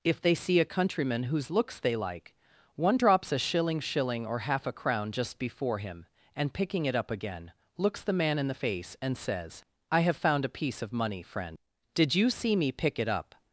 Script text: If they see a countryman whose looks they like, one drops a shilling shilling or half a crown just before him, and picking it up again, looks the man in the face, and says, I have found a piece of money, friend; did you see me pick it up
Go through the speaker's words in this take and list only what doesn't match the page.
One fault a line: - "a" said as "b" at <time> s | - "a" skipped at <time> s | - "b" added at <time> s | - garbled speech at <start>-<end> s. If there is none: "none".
none